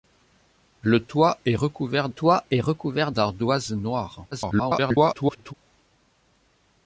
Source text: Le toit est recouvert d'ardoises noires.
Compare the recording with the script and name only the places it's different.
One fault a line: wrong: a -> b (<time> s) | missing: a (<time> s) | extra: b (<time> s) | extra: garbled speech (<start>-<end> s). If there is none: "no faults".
extra: toit est recouvert (2.1 s)
extra: garbled speech (4.3-5.5 s)